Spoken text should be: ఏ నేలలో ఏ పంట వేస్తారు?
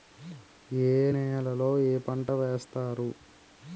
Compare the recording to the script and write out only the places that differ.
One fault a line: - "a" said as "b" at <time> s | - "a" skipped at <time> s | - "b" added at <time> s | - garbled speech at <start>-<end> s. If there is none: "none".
none